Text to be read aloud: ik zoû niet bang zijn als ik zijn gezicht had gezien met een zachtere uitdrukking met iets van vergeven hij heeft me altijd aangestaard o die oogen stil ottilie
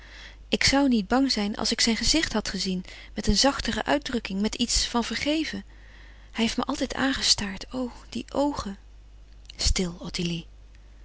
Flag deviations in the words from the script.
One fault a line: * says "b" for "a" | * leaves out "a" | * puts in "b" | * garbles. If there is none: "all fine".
all fine